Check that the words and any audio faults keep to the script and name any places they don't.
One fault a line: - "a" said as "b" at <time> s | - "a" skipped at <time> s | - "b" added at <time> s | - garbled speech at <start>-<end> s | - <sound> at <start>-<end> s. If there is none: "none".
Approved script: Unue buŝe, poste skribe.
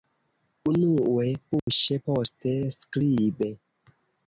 - dropout at 1.6-1.7 s